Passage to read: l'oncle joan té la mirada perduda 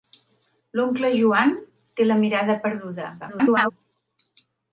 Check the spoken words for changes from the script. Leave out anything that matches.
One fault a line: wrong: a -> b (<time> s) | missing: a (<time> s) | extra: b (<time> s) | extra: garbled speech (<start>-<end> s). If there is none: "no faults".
extra: garbled speech (3.2-3.7 s)